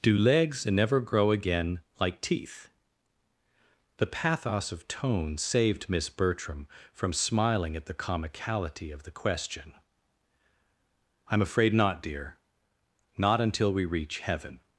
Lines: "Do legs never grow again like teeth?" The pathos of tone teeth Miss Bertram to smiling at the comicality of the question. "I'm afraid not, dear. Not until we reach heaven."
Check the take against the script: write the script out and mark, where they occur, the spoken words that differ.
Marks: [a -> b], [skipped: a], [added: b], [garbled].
"Do legs never grow again like teeth?" The pathos of tone [teeth -> saved] Miss Bertram [to -> from] smiling at the comicality of the question. "I'm afraid not, dear. Not until we reach heaven."